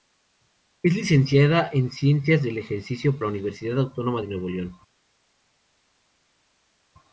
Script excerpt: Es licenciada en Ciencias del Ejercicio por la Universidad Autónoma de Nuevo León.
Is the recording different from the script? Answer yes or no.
yes